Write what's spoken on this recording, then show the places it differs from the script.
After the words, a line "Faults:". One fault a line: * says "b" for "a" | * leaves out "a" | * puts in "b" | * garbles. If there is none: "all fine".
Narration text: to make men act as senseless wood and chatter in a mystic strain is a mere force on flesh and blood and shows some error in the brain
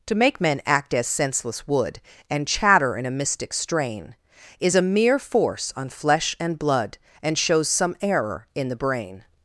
to make men act as senseless wood and chatter in a mystic strain is a mere force on flesh and blood and shows some error in the brain
Faults:
all fine